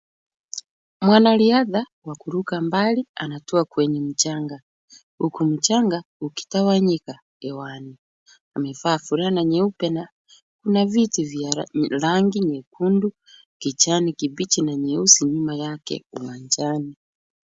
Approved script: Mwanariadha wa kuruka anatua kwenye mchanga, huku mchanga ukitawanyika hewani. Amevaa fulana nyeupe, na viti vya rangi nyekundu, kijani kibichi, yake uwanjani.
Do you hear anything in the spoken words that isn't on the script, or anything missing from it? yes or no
yes